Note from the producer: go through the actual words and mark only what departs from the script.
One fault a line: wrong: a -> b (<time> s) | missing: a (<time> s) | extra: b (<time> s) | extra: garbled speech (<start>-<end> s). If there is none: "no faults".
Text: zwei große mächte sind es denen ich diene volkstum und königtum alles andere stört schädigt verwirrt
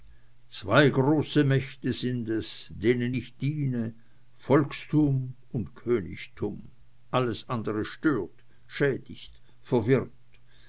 no faults